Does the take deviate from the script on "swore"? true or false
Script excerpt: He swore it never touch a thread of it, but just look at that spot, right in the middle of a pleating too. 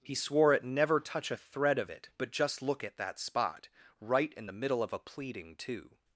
false